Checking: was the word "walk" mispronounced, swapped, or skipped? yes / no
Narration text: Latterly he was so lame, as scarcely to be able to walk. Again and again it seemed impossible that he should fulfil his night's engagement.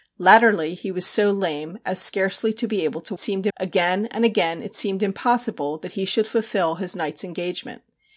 yes